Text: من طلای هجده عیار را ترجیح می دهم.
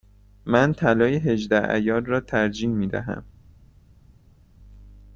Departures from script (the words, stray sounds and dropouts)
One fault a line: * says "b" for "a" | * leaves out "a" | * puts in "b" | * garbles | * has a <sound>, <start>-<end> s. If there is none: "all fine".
all fine